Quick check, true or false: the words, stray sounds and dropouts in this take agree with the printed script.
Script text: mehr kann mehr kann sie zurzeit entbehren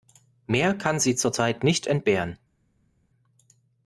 false